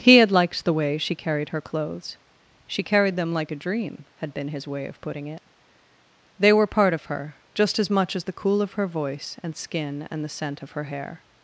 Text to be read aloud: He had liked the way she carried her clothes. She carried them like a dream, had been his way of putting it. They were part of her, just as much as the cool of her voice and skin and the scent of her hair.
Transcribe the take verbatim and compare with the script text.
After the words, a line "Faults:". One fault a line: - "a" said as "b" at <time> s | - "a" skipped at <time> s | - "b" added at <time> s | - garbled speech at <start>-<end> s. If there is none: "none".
He had liked the way she carried her clothes. She carried them like a dream, had been his way of putting it. They were part of her, just as much as the cool of her voice and skin and the scent of her hair.
Faults:
none